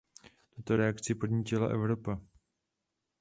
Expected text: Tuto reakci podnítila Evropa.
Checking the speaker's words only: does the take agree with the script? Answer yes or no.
yes